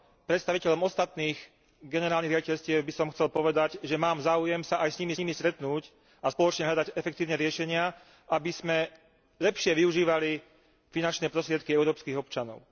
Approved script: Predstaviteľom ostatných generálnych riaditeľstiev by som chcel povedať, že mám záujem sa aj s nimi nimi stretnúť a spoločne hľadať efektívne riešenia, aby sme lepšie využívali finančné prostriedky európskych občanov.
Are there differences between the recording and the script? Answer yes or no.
no